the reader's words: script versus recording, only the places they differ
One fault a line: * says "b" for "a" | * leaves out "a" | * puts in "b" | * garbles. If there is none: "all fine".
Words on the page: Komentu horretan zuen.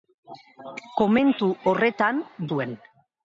all fine